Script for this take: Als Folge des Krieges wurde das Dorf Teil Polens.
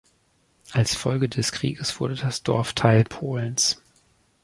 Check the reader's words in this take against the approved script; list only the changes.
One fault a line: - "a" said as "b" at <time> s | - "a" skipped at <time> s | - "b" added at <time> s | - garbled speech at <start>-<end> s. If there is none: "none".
none